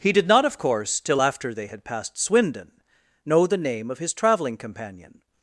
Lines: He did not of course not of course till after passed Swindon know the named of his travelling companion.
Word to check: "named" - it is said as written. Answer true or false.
false